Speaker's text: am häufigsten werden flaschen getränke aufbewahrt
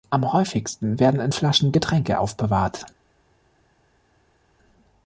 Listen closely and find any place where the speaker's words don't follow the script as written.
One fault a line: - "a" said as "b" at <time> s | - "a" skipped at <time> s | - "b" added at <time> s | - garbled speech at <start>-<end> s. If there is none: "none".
- "in" added at 1.2 s